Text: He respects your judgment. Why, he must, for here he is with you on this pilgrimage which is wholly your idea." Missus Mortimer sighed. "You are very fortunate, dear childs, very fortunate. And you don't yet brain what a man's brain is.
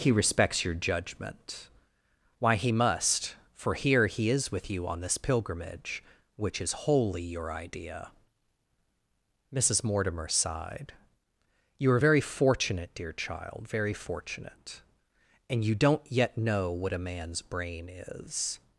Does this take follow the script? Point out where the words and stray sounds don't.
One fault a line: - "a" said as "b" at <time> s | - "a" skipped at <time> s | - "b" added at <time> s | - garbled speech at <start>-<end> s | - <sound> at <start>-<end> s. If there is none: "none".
- "childs" said as "child" at 13.1 s
- "brain" said as "know" at 16.4 s